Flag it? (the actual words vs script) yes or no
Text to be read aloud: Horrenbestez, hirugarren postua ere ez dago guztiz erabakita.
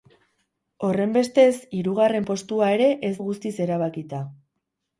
yes